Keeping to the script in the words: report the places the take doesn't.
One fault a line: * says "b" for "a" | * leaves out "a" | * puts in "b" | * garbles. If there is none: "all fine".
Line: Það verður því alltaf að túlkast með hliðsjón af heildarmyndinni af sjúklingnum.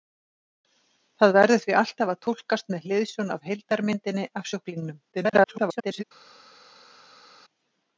* garbles